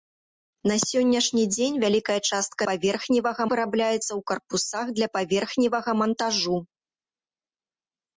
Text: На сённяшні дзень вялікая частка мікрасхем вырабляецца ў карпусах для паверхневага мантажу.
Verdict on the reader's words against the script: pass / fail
fail